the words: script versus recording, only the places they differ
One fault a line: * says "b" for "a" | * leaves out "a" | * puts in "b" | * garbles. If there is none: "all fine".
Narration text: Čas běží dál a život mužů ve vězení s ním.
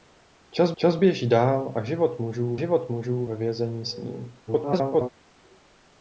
* puts in "čas"
* puts in "život mužů"
* garbles